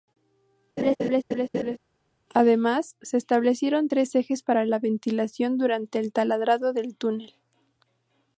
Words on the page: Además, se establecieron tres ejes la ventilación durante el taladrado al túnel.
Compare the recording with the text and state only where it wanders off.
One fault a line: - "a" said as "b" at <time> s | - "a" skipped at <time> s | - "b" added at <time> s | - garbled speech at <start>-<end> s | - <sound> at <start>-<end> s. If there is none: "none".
- laugh at 0.8-1.8 s
- "para" added at 4.4 s
- "al" said as "del" at 6.7 s